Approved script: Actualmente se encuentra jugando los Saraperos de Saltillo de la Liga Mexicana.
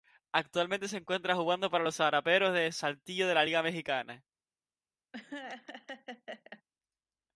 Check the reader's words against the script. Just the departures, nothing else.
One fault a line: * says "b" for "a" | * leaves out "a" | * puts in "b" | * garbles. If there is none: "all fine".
* puts in "para"